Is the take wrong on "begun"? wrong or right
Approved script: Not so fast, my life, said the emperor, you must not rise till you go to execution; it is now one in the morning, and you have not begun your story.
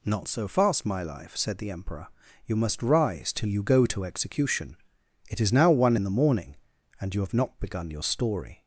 right